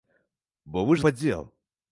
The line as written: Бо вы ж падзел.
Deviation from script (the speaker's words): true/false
false